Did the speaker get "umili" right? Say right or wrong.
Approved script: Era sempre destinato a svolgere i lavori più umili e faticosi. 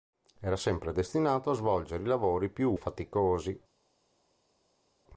wrong